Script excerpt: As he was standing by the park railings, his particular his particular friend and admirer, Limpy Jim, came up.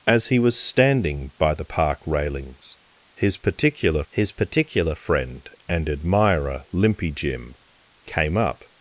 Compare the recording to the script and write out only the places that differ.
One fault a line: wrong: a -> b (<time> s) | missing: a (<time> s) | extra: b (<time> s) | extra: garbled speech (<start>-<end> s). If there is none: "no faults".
no faults